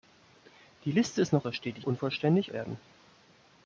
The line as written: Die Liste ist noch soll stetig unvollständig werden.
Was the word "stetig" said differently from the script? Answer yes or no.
no